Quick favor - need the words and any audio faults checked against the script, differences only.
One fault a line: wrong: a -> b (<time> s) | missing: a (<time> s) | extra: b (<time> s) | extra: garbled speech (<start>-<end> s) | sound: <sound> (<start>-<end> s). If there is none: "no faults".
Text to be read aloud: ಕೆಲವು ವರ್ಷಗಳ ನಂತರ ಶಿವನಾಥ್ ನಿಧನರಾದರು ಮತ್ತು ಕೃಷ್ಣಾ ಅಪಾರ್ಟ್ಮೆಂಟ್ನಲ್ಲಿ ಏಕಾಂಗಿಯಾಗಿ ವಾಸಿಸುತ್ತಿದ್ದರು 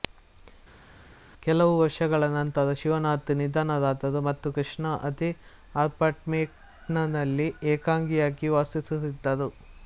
extra: ಅದೇ (5.1 s)